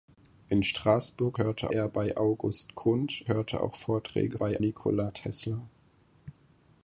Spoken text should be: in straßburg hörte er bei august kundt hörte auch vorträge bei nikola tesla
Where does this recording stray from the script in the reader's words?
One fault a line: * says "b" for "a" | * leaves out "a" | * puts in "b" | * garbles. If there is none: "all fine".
all fine